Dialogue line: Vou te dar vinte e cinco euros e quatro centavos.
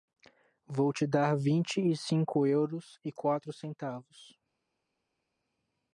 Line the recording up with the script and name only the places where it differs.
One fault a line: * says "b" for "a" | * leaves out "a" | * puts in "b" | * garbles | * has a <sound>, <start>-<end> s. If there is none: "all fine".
all fine